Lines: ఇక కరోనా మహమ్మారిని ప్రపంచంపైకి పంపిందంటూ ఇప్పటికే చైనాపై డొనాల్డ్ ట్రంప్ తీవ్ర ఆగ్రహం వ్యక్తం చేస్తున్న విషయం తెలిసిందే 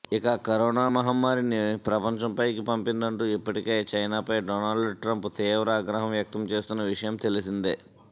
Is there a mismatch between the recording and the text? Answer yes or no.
no